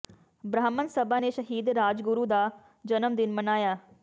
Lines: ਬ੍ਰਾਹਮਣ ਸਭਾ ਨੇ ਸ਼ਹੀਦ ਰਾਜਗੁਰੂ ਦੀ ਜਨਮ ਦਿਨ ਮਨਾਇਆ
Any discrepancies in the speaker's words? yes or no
yes